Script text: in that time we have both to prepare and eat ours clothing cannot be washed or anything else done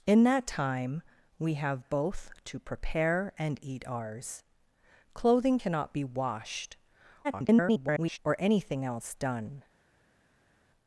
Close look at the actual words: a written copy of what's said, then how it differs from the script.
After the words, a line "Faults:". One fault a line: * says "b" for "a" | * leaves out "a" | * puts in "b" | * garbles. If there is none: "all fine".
in that time we have both to prepare and eat ours clothing cannot be washed [garbled] or anything else done
Faults:
* garbles